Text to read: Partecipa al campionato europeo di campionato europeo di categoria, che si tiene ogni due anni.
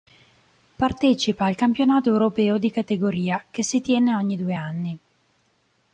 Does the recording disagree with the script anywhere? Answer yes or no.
yes